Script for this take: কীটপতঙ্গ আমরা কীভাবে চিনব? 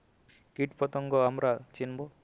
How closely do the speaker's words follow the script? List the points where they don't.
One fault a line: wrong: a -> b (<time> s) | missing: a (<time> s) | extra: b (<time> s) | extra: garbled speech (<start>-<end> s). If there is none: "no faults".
missing: কীভাবে (1.5 s)